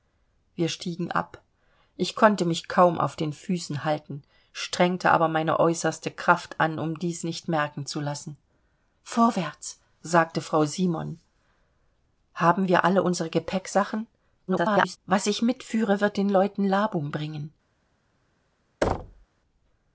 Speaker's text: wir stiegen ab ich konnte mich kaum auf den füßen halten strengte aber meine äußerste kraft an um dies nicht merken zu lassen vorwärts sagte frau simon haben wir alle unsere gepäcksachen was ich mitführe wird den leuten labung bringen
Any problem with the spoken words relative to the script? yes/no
yes